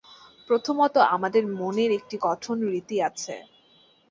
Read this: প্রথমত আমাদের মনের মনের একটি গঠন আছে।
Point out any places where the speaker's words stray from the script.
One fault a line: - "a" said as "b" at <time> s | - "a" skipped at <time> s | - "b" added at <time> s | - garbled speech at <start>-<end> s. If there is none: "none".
- "মনের" skipped at 1.9 s
- "রীতি" added at 2.7 s